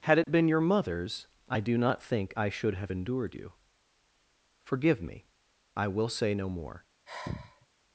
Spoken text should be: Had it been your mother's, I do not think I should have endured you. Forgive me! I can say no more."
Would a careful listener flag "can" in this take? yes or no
yes